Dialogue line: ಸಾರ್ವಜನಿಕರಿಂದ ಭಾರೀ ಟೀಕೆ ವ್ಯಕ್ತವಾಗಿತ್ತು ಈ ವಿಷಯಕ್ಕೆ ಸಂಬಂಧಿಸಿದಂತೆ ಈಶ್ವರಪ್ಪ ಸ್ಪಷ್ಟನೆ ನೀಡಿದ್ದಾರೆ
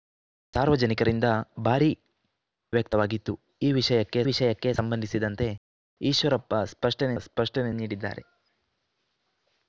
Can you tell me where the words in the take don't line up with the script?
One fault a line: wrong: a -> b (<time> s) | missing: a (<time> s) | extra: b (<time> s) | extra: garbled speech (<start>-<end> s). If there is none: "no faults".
missing: ಟೀಕೆ (1.9 s)
extra: ವಿಷಯಕ್ಕೆ (4.2 s)
extra: ಸ್ಪಷ್ಟನೆ (7.2 s)